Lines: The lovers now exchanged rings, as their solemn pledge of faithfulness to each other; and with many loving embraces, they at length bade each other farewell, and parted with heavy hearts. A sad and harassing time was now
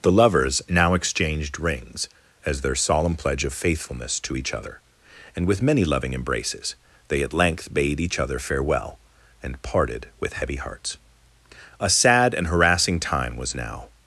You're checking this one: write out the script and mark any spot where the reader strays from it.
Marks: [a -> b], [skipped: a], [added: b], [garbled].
The lovers now exchanged rings, as their solemn pledge of faithfulness to each other; and with many loving embraces, they at length bade each other farewell, and parted with heavy hearts. A sad and harassing time was now